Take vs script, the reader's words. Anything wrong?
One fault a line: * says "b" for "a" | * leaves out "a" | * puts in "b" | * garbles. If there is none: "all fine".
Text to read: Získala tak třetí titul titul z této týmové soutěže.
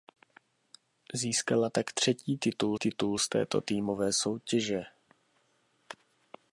all fine